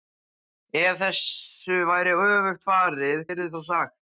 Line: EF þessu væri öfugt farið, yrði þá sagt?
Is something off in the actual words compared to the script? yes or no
no